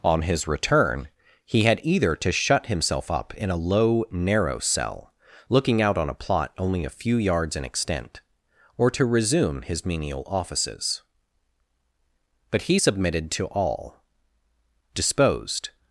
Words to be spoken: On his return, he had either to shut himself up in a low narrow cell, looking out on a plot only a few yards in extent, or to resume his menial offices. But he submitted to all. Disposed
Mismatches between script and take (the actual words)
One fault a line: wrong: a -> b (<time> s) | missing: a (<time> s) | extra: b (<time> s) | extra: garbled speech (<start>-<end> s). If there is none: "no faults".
no faults